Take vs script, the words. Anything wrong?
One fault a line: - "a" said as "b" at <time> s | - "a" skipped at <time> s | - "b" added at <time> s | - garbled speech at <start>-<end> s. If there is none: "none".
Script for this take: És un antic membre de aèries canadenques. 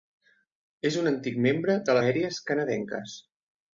none